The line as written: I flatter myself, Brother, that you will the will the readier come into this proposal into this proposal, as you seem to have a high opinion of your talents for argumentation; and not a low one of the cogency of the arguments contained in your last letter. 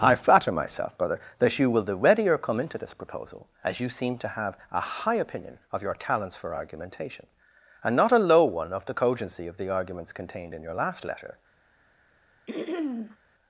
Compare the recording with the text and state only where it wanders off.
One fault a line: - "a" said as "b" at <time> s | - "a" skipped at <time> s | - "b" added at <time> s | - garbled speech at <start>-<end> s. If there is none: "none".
- "will the" skipped at 1.9 s
- "into this proposal" skipped at 3.5 s